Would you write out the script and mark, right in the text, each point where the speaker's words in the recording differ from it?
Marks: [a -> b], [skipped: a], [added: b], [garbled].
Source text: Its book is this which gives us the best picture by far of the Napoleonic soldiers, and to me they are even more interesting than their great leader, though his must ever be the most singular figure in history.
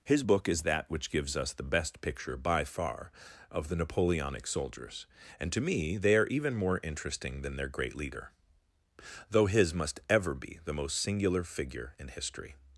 [Its -> His] book is [this -> that] which gives us the best picture by far of the Napoleonic soldiers, and to me they are even more interesting than their great leader, though his must ever be the most singular figure in history.